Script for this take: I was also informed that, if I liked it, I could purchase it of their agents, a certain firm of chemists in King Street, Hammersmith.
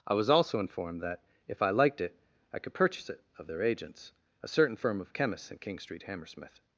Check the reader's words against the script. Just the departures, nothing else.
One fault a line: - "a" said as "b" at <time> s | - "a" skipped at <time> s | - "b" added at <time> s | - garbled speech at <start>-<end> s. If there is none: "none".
none